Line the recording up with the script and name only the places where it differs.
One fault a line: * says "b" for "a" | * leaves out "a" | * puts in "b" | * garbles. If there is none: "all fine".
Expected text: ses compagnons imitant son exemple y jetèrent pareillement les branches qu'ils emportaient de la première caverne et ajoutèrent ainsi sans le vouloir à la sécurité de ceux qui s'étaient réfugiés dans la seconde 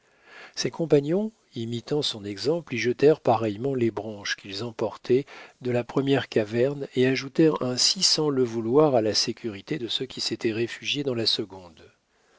all fine